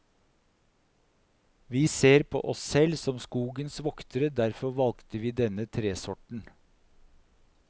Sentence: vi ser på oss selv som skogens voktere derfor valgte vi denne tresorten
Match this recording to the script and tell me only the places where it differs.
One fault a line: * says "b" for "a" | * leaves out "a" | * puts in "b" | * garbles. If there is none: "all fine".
all fine